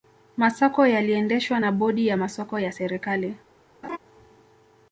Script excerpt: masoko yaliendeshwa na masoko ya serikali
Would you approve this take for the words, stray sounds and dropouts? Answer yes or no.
no